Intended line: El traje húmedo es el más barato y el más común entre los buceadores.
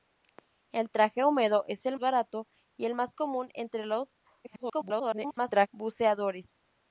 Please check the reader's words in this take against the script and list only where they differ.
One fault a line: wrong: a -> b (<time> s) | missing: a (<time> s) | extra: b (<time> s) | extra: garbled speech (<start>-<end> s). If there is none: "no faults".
missing: más (1.9 s)
extra: garbled speech (4.4-5.7 s)